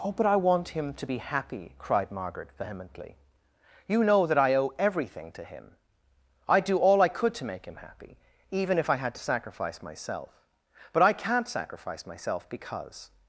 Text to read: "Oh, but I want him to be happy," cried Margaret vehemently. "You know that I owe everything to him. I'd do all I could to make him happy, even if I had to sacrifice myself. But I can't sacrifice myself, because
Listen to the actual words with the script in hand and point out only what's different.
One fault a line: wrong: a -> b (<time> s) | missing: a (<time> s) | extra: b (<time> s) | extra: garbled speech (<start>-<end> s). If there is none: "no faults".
no faults